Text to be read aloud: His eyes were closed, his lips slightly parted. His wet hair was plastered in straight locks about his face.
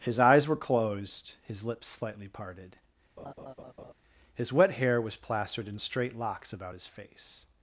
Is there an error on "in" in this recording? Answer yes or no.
no